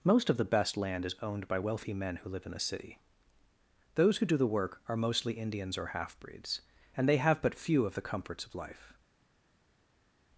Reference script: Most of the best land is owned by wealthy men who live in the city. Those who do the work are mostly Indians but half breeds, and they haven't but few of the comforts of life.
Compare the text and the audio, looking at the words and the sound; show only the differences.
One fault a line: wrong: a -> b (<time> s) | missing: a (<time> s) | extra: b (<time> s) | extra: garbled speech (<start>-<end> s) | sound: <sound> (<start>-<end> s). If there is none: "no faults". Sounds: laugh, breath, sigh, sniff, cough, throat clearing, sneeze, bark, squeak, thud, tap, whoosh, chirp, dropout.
wrong: but -> or (5.7 s)
wrong: haven't -> have (7.2 s)